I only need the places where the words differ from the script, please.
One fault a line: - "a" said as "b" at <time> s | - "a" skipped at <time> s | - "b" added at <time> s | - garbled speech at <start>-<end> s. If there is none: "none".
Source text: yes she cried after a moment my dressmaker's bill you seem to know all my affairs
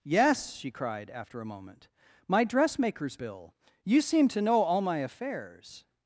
none